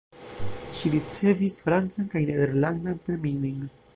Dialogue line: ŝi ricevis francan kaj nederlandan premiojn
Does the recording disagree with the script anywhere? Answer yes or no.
no